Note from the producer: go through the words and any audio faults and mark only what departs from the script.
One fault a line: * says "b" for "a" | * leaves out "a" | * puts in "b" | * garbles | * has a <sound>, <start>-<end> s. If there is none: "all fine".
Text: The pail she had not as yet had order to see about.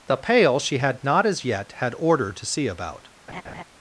* has a laugh, 3.3-3.6 s